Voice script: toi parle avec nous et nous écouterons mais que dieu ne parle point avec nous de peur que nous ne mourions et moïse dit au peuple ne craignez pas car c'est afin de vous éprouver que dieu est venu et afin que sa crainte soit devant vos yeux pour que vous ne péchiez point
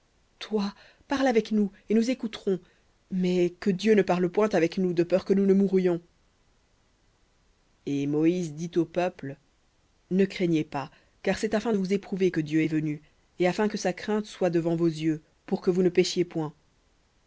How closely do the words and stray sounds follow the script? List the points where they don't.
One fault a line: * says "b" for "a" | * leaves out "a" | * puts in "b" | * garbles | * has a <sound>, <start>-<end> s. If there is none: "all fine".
all fine